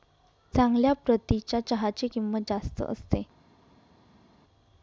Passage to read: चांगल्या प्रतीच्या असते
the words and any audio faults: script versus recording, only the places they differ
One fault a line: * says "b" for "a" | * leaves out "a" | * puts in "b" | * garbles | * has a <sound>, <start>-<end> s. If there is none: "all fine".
* puts in "चहाची किंमत जास्त"